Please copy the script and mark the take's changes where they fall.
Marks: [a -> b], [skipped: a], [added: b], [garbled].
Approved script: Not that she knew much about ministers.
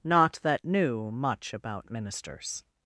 Not that [skipped: she] knew much about ministers.